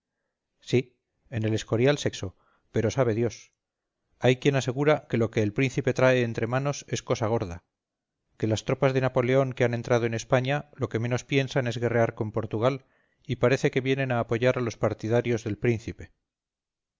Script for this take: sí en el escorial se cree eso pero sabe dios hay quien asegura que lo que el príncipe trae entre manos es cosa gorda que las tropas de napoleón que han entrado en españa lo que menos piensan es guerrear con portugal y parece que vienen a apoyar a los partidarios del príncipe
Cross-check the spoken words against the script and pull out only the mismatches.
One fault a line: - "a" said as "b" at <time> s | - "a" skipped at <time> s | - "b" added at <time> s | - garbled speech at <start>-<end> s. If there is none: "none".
- "cree" skipped at 2.1 s